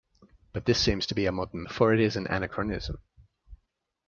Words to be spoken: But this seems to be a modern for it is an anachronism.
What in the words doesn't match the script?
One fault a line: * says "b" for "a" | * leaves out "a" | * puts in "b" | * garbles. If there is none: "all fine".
all fine